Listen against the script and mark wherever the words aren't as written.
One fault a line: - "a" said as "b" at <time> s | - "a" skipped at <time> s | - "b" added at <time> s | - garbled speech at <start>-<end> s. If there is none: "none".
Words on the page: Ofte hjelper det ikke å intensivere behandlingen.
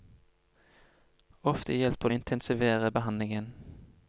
- "det ikke" skipped at 2.1 s